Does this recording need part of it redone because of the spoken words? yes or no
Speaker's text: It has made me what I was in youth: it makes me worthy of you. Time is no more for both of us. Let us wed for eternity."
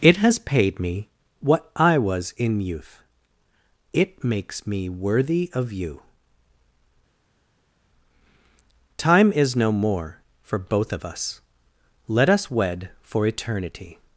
yes